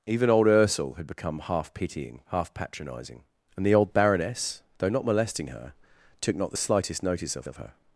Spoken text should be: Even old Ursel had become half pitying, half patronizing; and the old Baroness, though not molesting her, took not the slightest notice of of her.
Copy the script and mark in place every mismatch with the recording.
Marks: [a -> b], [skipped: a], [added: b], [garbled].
Even old Ursel had become half pitying, half patronizing; and the old Baroness, though not molesting her, took not the slightest notice of of her.